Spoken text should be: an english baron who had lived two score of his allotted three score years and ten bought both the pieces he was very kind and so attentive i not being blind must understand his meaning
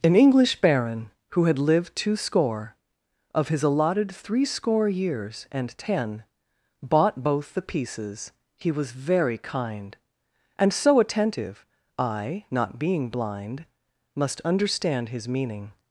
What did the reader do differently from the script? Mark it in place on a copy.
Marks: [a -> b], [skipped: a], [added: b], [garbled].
an english baron who had lived two score of his allotted three score years and ten bought both the pieces he was very kind and so attentive i not being blind must understand his meaning